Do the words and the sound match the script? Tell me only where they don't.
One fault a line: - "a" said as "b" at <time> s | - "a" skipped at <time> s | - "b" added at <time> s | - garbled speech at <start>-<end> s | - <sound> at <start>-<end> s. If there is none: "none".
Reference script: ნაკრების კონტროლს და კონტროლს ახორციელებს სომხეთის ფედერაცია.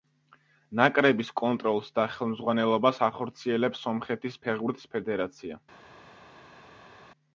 - "კონტროლს" said as "ხელმძღვანელობას" at 2.1 s
- "ფეხბურთის" added at 4.5 s